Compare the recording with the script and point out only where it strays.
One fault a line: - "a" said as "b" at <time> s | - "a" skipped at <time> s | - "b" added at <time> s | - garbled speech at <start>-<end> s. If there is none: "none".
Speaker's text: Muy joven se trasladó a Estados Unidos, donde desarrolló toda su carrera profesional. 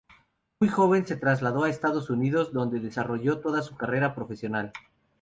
none